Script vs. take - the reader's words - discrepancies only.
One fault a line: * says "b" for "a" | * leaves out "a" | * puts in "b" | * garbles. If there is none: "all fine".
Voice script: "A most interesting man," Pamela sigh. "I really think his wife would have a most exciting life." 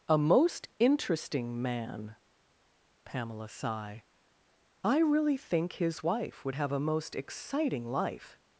all fine